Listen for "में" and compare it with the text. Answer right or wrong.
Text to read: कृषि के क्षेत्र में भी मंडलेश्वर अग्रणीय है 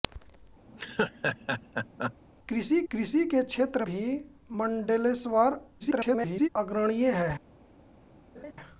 wrong